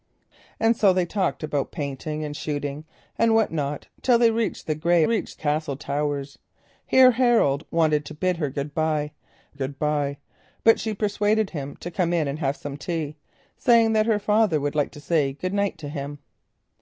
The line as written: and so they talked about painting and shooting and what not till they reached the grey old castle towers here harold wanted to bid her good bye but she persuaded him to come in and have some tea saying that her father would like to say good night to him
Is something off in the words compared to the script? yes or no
yes